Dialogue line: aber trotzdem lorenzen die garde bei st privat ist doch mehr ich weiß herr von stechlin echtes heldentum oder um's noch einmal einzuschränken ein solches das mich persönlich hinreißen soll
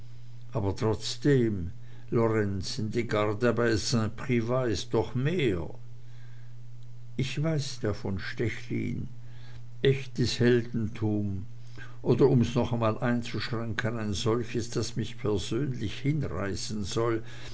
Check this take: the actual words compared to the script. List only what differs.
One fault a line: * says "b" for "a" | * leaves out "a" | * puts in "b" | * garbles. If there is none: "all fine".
all fine